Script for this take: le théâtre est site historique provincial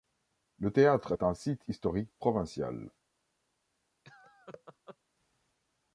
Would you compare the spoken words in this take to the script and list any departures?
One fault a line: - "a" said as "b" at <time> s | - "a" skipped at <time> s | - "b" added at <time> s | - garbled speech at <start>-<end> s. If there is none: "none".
- "un" added at 1.2 s